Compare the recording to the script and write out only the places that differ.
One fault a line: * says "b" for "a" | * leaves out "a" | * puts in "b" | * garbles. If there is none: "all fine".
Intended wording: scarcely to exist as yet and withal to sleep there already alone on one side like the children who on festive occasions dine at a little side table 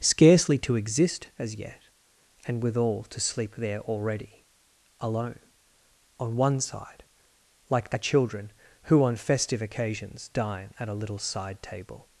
all fine